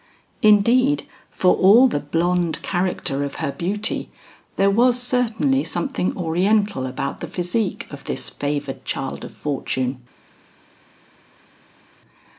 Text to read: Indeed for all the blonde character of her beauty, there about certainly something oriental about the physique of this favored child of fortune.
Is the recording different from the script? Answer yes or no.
yes